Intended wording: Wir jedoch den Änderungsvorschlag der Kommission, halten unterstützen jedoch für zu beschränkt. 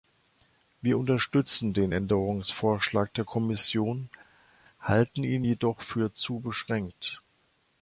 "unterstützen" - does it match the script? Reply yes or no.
no